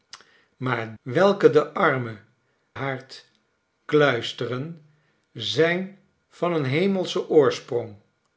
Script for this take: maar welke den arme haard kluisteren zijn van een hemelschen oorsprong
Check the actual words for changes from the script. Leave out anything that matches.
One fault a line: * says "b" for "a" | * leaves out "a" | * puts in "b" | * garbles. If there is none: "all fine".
all fine